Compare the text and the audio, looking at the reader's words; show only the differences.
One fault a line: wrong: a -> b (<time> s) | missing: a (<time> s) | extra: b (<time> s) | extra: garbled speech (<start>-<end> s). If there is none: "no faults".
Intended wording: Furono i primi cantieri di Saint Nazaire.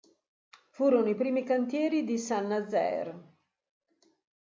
no faults